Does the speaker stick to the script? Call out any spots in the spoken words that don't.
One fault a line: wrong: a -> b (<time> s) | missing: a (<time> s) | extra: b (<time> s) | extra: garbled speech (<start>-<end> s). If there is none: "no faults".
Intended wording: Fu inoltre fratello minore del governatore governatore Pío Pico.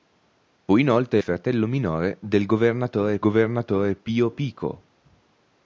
no faults